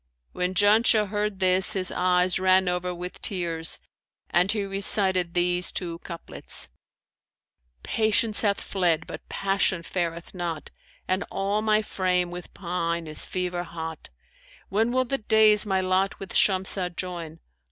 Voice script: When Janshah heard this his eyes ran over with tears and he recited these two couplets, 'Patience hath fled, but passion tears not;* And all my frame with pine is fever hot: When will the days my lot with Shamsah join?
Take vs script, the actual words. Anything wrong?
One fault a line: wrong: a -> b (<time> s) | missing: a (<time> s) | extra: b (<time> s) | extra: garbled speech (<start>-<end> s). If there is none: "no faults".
wrong: tears -> fareth (9.8 s)